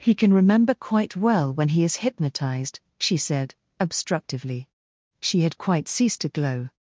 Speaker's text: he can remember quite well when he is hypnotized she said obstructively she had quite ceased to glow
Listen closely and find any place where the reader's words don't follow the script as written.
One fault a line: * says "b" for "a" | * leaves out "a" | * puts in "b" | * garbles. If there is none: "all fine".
all fine